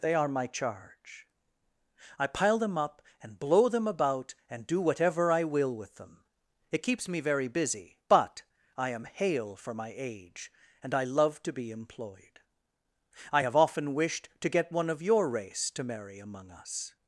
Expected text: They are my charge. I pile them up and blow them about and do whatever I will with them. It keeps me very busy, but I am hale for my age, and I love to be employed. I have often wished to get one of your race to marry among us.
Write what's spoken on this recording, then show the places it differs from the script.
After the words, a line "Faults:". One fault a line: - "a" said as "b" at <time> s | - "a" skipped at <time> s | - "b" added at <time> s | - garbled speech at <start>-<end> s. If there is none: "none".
They are my charge. I pile them up and blow them about and do whatever I will with them. It keeps me very busy, but I am hale for my age, and I love to be employed. I have often wished to get one of your race to marry among us.
Faults:
none